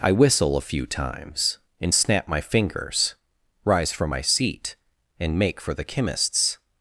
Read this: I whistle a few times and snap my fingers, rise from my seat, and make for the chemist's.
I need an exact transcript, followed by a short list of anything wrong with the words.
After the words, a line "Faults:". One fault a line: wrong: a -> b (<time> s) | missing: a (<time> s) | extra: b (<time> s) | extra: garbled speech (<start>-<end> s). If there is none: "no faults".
I whistle a few times and snap my fingers, rise from my seat, and make for the chemist's.
Faults:
no faults